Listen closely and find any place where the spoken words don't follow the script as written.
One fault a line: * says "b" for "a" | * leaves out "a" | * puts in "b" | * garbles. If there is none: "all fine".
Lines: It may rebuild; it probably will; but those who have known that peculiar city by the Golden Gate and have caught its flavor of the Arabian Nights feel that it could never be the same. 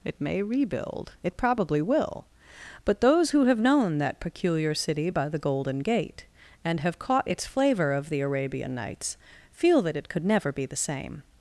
all fine